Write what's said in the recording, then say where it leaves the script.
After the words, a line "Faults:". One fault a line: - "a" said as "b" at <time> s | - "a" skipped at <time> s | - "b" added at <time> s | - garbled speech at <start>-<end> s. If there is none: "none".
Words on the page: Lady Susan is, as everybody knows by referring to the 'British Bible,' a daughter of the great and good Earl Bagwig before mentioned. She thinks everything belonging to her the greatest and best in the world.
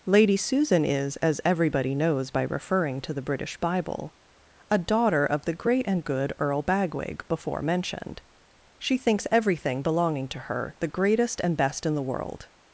Lady Susan is, as everybody knows by referring to the 'British Bible,' a daughter of the great and good Earl Bagwig before mentioned. She thinks everything belonging to her the greatest and best in the world.
Faults:
none